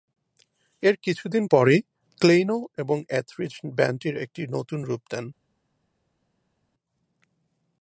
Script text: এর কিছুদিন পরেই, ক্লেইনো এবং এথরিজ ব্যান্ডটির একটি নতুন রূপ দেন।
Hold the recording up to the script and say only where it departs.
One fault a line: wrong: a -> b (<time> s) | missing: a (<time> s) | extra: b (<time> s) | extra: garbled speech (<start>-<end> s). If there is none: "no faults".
no faults